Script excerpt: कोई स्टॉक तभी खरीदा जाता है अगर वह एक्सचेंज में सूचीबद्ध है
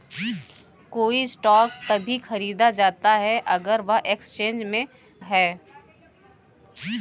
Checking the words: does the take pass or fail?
fail